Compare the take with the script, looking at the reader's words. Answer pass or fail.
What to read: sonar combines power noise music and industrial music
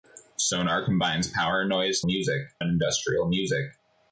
pass